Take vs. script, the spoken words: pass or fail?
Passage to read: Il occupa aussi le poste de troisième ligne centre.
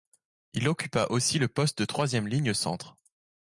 pass